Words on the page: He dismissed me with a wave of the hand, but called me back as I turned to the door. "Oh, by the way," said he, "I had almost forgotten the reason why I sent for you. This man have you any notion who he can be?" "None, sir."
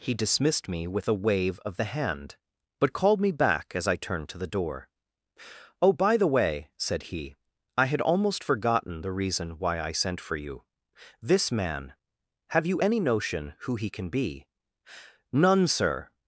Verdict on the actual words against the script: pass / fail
pass